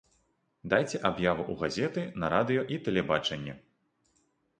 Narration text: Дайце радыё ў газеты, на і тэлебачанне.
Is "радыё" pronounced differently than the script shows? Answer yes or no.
yes